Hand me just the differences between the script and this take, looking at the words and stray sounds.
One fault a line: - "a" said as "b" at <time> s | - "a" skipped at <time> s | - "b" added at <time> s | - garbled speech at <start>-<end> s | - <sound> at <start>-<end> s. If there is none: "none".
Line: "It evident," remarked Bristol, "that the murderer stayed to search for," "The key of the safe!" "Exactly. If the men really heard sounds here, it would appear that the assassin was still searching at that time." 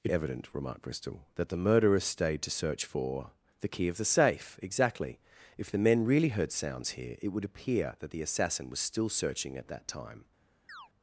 - chirp at 10.7-10.9 s